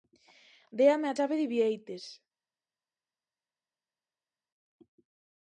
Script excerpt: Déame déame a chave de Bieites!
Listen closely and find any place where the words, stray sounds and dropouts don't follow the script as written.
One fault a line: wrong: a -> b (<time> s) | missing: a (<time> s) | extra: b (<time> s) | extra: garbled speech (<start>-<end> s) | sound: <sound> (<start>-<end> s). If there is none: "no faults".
missing: déame (1.1 s)